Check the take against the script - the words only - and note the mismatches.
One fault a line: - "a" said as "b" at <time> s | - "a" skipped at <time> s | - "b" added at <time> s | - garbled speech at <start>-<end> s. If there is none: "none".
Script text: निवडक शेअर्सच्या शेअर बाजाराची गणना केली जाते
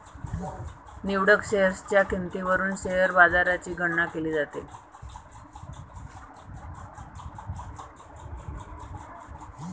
- "किंमतीवरून" added at 2.0 s